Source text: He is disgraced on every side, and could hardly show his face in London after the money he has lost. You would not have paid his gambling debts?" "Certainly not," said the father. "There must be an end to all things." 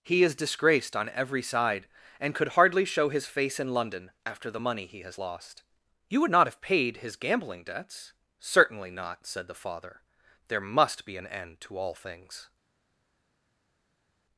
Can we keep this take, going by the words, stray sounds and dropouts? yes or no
yes